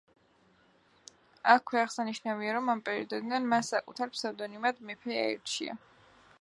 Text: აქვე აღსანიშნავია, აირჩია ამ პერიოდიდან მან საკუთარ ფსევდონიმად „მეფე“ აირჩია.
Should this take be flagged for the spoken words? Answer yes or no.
yes